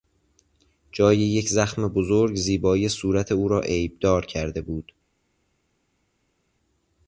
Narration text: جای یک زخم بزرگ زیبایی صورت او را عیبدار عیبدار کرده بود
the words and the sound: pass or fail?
fail